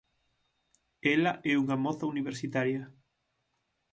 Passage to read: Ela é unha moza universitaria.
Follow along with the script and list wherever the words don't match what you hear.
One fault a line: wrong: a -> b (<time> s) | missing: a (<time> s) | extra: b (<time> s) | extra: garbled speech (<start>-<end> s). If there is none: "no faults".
no faults